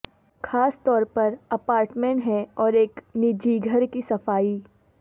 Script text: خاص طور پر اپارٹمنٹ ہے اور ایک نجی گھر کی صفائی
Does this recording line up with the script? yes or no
yes